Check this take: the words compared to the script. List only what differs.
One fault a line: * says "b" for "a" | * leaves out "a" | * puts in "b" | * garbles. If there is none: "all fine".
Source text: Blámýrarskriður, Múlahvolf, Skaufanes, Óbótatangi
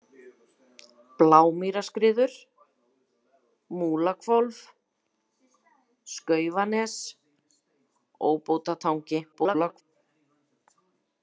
* garbles